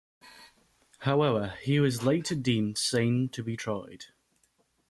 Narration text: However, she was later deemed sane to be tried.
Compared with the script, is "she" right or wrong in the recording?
wrong